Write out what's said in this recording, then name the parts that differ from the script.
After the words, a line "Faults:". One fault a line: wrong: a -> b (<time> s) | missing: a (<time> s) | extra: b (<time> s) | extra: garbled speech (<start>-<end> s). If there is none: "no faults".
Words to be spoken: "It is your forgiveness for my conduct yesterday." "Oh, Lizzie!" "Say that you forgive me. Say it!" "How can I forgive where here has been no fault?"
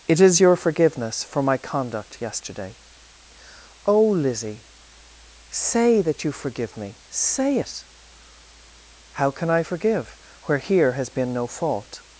"It is your forgiveness for my conduct yesterday." "Oh, Lizzie!" "Say that you forgive me. Say it!" "How can I forgive where here has been no fault?"
Faults:
no faults